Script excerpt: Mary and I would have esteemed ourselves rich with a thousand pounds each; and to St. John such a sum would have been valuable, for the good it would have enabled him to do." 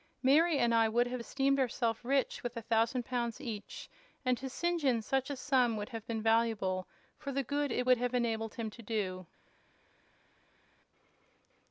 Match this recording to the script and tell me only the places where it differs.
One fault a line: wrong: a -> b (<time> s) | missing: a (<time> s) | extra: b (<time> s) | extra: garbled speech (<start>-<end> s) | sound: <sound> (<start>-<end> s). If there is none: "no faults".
no faults